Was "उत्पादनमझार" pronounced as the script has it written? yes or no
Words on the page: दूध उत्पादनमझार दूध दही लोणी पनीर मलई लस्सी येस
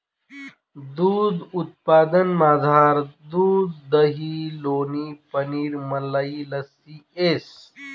yes